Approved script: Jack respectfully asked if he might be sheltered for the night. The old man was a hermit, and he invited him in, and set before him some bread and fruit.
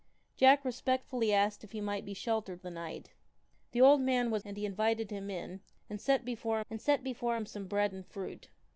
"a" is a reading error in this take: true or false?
true